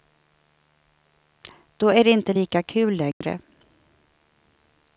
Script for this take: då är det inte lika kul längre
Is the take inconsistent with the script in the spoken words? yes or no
no